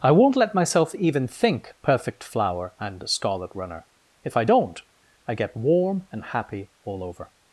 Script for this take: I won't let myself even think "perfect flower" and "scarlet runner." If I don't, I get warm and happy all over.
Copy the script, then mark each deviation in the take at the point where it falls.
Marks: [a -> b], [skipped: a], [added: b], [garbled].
I won't let myself even think "perfect flower" and "scarlet runner." If I don't, I get warm and happy all over.